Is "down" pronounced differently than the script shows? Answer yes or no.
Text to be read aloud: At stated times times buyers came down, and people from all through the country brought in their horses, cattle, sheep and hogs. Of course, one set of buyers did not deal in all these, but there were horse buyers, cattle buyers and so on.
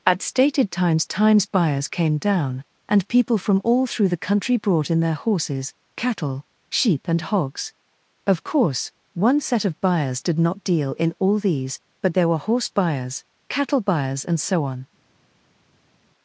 no